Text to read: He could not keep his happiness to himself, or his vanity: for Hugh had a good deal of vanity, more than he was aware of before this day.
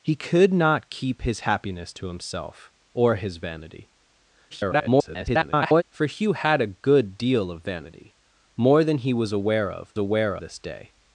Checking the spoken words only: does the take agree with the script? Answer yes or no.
no